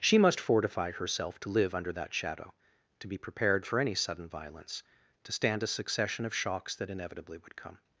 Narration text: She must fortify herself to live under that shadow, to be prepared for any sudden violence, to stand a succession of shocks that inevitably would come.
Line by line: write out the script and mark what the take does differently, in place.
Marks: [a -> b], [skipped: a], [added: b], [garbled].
She must fortify herself to live under that shadow, to be prepared for any sudden violence, to stand a succession of shocks that inevitably would come.